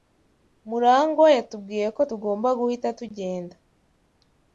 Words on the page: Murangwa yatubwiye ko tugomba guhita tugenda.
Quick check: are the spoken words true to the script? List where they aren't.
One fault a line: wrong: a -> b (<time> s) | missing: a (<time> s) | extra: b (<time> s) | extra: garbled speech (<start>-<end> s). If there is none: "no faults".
no faults